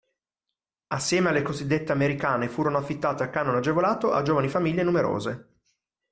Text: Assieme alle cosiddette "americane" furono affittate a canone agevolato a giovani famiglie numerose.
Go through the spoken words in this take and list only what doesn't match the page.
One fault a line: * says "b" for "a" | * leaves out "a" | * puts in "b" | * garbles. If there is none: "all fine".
all fine